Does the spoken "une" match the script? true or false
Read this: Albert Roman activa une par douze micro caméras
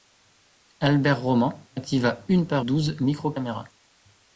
true